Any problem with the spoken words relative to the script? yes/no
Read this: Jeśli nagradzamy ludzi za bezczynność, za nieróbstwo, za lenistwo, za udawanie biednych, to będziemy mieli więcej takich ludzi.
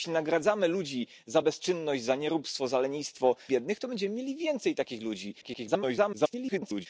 yes